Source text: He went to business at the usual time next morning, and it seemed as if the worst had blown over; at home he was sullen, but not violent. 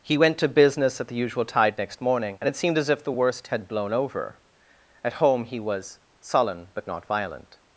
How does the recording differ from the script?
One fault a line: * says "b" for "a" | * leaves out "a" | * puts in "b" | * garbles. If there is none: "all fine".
* says "tide" for "time"